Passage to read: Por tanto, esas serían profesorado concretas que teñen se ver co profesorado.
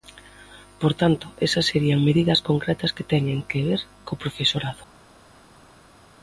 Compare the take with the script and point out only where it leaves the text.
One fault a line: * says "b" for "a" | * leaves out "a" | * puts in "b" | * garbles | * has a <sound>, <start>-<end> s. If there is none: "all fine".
* says "medidas" for "profesorado"
* says "que" for "se"